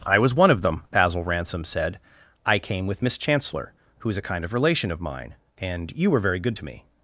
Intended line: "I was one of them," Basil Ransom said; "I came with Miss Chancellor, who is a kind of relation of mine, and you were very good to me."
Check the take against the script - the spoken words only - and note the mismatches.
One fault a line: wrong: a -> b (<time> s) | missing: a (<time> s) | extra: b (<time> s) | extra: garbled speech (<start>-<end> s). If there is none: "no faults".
no faults